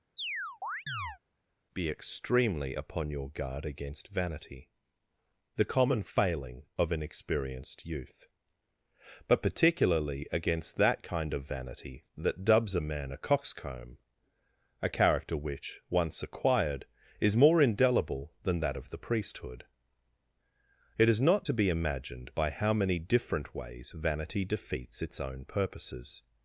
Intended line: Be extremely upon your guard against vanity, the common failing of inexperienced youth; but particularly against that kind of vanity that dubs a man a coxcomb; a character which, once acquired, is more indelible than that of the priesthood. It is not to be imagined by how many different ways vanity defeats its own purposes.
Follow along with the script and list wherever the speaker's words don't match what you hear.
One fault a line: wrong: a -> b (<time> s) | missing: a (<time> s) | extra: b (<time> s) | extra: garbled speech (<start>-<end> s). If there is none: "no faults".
no faults